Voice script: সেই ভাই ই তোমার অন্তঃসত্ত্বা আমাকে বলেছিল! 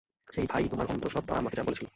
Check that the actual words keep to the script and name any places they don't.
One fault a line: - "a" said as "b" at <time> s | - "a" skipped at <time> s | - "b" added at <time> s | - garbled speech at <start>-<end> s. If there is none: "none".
none